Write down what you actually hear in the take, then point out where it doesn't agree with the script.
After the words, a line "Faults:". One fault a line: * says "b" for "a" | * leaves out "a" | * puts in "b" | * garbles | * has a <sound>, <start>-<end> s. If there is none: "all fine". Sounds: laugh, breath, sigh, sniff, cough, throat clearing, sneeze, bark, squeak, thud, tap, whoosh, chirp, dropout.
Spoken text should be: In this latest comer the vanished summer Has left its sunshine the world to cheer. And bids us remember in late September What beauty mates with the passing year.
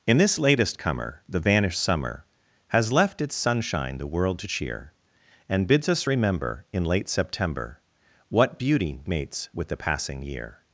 In this latest comer the vanished summer Has left its sunshine the world to cheer. And bids us remember in late September What beauty mates with the passing year.
Faults:
all fine